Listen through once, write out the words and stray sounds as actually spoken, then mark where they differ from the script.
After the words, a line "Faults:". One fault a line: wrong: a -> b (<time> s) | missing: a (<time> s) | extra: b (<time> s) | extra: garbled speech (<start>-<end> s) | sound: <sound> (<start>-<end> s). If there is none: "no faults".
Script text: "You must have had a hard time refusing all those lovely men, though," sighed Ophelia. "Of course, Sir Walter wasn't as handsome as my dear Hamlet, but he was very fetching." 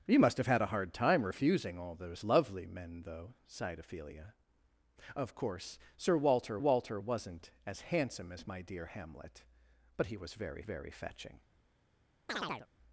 "You must have had a hard time refusing all those lovely men, though," sighed Ophelia. "Of course, Sir Walter Walter wasn't as handsome as my dear Hamlet, but he was very very fetching."
Faults:
extra: Walter (6.6 s)
extra: very (10.6 s)
sound: chirp (12.3-12.7 s)